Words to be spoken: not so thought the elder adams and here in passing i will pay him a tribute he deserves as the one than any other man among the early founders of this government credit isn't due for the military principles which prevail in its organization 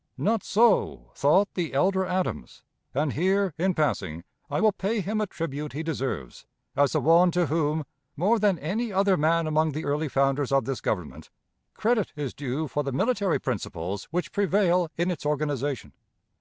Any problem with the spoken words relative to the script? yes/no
yes